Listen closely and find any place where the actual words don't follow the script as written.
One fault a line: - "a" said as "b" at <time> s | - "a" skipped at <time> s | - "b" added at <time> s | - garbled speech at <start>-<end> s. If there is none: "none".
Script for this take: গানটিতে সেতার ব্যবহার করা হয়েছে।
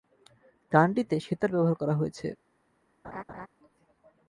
none